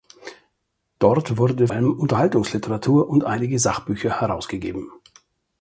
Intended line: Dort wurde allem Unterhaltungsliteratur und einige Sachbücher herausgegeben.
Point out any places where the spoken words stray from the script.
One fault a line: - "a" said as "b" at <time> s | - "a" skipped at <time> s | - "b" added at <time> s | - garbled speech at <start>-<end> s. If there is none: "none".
none